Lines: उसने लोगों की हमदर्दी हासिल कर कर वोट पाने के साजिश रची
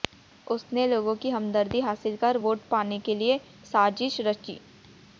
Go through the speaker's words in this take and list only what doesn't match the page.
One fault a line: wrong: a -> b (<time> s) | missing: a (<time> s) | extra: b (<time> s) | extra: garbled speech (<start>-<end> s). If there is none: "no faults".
missing: कर (2.4 s)
extra: लिए (3.1 s)